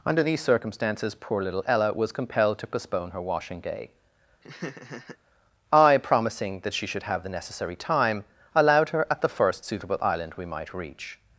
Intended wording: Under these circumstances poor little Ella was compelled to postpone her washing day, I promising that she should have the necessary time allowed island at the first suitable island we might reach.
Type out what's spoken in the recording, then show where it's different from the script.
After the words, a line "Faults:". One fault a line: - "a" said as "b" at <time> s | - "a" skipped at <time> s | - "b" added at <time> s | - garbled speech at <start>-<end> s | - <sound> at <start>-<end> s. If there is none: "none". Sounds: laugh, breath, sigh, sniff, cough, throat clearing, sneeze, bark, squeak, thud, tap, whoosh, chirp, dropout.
Under these circumstances poor little Ella was compelled to postpone her washing day, I promising that she should have the necessary time allowed her at the first suitable island we might reach.
Faults:
- laugh at 4.4-5.2 s
- "island" said as "her" at 8.9 s